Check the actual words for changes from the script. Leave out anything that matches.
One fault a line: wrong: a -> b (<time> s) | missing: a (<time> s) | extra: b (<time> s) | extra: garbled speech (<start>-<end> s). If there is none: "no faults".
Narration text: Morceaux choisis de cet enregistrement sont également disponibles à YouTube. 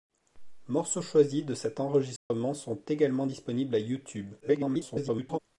extra: garbled speech (4.4-5.4 s)